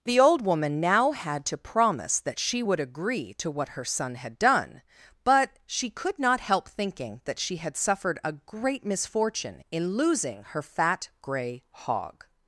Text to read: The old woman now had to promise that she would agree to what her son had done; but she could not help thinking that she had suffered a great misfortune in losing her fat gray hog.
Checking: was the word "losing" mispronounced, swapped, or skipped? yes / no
no